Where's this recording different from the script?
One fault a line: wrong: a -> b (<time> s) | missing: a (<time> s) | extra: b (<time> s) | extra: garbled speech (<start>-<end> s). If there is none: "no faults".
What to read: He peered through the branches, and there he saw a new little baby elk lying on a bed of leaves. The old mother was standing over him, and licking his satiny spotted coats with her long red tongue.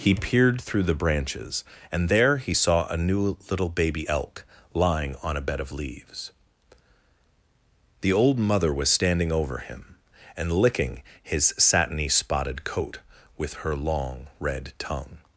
wrong: coats -> coat (12.6 s)